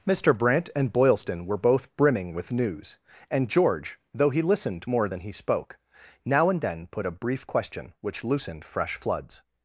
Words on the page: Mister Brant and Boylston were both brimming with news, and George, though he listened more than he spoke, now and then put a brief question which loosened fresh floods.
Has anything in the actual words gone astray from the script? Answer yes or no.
no